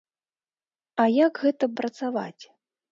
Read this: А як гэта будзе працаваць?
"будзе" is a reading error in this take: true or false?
true